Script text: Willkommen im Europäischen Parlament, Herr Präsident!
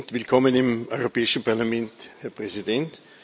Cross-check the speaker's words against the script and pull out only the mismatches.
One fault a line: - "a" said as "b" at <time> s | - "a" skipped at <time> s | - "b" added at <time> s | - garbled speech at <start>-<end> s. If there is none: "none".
none